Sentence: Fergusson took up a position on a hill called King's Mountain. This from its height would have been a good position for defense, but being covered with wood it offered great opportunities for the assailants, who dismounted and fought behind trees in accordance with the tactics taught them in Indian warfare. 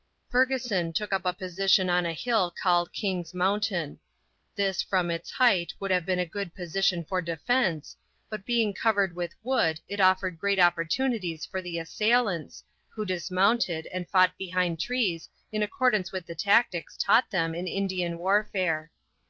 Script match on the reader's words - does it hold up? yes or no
yes